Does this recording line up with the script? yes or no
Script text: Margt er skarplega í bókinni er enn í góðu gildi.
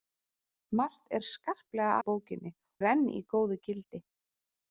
yes